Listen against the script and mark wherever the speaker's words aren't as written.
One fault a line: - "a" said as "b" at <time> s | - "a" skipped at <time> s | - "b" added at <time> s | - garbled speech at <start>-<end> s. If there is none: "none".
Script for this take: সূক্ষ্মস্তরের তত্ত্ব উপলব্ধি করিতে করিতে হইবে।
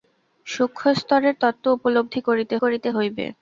none